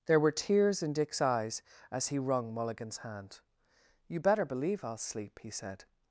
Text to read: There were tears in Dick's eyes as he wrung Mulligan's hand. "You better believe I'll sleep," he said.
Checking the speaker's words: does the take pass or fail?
pass